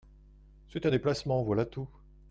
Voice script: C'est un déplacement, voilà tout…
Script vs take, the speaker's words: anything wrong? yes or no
no